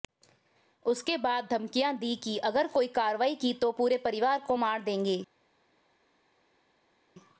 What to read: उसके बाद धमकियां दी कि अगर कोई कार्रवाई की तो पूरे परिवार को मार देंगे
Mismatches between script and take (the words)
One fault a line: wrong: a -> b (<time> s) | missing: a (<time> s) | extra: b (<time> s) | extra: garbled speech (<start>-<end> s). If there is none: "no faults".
no faults